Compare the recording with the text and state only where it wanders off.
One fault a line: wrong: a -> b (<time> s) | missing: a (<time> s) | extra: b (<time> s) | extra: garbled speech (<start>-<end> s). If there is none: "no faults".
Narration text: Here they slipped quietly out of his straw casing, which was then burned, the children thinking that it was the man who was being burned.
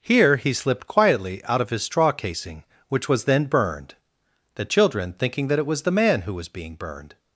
wrong: they -> he (0.3 s)